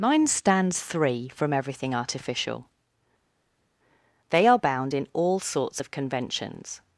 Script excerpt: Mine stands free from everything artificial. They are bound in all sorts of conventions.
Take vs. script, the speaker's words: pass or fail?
fail